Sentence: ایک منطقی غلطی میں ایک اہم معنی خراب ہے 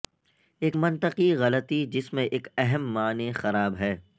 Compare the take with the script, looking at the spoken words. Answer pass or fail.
fail